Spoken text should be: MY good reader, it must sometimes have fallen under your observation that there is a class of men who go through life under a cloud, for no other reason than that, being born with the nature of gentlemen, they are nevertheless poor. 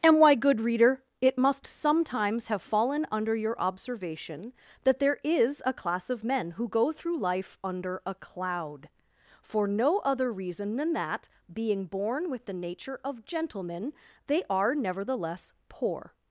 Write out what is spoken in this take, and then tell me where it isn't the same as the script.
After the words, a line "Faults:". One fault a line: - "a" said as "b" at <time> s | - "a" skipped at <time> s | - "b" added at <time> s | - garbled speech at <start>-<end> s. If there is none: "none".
And why good reader, it must sometimes have fallen under your observation that there is a class of men who go through life under a cloud, for no other reason than that, being born with the nature of gentlemen, they are nevertheless poor.
Faults:
- "MY" said as "And why" at 0.0 s